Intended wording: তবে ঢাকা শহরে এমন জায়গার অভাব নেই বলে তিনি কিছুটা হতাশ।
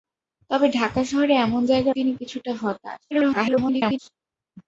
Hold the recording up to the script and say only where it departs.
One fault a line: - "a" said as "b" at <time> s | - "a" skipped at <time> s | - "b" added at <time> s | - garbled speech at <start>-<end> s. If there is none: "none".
- "অভাব নেই বলে" skipped at 1.9 s
- garbled speech at 3.1-4.0 s